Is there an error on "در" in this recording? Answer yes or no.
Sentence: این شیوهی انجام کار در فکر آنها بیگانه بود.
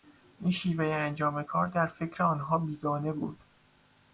no